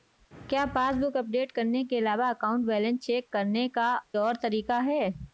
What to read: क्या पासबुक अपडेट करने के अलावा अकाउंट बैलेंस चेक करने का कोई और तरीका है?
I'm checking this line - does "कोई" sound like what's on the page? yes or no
no